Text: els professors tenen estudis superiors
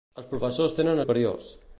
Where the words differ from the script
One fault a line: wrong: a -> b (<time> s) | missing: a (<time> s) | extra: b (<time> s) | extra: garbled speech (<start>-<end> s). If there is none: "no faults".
missing: estudis (1.0 s)